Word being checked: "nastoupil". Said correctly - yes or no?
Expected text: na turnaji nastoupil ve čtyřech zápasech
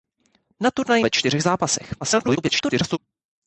no